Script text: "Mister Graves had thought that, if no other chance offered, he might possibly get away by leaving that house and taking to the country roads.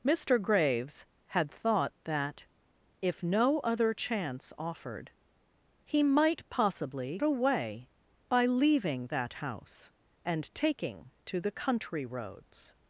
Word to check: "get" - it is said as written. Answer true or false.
false